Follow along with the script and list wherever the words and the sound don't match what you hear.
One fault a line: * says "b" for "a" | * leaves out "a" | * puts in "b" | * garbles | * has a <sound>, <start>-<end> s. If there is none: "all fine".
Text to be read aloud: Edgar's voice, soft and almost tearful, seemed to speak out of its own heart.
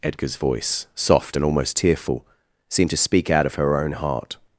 * says "her" for "its"